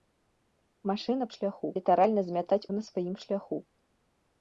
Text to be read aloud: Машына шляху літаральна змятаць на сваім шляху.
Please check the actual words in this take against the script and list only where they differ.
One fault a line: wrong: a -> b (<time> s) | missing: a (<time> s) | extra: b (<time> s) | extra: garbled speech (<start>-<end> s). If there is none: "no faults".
no faults